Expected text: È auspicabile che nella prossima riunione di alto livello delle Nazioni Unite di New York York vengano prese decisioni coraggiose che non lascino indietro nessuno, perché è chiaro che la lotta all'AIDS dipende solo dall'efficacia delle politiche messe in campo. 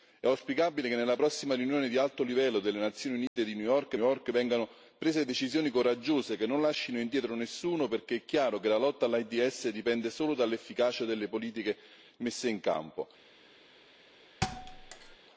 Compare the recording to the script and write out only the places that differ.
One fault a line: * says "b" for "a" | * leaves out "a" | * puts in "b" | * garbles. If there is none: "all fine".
all fine